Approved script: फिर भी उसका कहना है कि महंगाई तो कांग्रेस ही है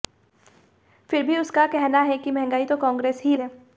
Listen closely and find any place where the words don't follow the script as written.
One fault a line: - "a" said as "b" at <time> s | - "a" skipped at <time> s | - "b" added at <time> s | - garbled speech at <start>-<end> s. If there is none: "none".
none